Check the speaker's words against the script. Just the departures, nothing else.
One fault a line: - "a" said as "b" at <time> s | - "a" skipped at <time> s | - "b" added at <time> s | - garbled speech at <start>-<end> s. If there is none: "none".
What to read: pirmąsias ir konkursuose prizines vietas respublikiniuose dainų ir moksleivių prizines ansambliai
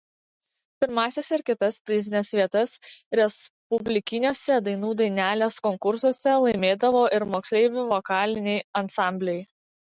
- "konkursuose" said as "kitas" at 1.5 s
- "dainelės konkursuose laimėdavo" added at 5.0 s
- "prizines" said as "vokaliniai" at 8.0 s